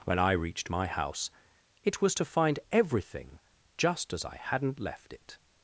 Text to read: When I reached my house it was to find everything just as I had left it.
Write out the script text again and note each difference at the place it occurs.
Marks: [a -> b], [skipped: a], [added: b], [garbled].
When I reached my house it was to find everything just as I [had -> hadn't] left it.